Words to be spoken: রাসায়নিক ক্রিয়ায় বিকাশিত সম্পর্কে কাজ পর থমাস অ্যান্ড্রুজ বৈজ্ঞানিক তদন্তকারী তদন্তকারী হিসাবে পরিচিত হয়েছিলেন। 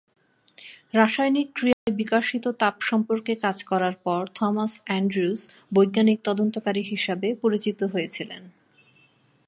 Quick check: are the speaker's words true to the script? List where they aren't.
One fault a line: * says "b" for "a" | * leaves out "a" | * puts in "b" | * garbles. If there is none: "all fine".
* puts in "তাপ"
* puts in "করার"
* leaves out "তদন্তকারী"